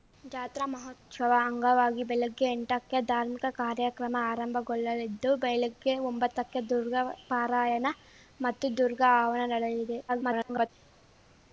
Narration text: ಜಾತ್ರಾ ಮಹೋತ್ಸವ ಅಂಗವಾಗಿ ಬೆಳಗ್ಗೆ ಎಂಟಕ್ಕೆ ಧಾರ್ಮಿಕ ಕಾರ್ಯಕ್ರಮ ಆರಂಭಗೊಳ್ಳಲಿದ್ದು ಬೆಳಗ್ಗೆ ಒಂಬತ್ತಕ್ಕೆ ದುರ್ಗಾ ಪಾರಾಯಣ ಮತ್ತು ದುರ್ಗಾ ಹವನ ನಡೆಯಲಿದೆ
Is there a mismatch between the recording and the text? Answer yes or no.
yes